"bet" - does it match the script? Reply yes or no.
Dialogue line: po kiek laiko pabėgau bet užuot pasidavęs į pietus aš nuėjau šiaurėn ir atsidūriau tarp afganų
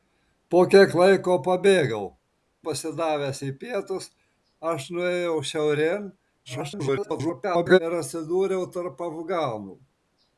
no